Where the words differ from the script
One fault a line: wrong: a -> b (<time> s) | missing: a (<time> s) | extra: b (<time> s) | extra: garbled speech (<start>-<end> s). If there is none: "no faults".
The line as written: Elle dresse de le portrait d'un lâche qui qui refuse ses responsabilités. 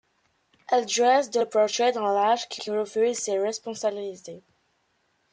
no faults